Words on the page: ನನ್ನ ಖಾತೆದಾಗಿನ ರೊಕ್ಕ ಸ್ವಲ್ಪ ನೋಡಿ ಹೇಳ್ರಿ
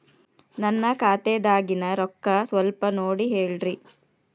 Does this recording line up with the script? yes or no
yes